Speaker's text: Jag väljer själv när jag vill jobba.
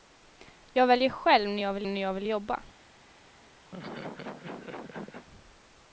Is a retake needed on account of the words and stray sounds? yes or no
yes